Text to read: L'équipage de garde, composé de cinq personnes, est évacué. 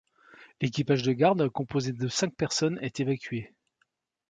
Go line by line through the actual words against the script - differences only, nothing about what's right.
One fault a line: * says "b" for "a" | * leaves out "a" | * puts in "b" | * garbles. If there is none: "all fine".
all fine